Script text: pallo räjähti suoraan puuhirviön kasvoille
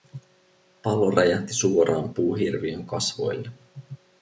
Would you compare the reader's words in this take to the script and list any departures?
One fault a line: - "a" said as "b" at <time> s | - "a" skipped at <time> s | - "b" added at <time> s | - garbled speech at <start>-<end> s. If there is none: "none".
none